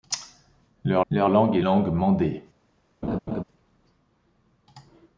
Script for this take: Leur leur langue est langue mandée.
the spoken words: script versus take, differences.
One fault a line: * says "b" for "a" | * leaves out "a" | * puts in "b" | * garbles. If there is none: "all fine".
all fine